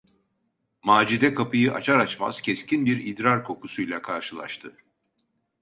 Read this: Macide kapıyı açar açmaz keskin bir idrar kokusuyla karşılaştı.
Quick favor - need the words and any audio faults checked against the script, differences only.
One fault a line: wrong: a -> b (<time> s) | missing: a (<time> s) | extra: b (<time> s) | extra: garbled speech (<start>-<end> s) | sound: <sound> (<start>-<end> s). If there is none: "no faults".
no faults